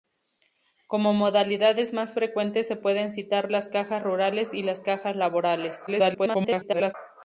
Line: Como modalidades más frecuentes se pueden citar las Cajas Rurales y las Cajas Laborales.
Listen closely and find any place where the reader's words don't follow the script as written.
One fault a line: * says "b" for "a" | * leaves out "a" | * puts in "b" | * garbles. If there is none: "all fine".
* garbles